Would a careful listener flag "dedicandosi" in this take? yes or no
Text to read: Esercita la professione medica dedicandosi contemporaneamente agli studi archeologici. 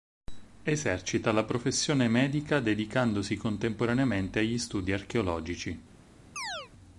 no